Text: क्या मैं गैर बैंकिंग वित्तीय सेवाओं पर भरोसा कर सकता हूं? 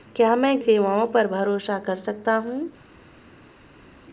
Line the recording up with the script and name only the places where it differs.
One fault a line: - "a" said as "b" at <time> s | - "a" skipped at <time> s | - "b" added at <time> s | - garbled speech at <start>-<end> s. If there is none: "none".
- "गैर बैंकिंग वित्तीय" skipped at 0.6 s